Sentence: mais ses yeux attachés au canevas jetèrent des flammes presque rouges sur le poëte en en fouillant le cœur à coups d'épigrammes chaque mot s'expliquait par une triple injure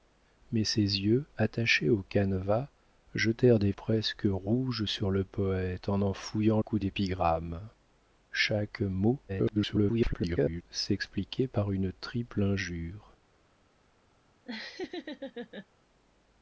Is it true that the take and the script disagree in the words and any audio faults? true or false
true